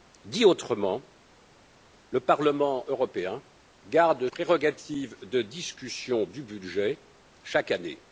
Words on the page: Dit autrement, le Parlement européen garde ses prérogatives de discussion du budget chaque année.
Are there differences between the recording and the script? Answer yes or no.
yes